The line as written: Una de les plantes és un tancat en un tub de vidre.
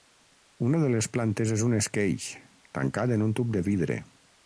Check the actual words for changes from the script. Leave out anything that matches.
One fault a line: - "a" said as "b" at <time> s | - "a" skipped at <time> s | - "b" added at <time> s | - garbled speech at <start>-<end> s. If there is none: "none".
- "esqueix" added at 1.8 s